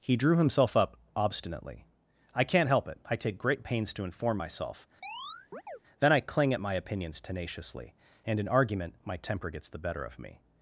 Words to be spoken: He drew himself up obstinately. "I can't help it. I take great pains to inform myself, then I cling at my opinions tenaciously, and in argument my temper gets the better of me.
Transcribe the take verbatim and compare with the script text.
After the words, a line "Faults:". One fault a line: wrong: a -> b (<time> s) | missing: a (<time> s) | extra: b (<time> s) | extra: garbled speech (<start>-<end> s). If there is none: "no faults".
He drew himself up obstinately. "I can't help it. I take great pains to inform myself, then I cling at my opinions tenaciously, and in argument my temper gets the better of me.
Faults:
no faults